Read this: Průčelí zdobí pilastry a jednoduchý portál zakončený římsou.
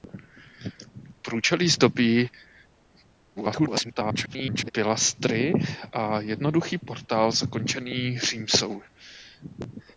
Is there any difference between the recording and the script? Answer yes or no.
yes